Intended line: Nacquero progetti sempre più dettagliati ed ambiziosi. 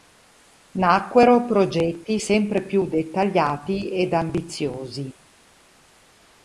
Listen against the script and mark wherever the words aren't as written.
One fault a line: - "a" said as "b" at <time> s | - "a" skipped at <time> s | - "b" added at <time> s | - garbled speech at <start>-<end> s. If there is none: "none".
none